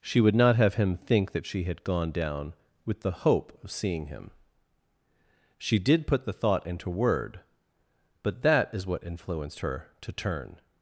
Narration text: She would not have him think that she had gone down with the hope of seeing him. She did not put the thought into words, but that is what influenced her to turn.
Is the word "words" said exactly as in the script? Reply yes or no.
no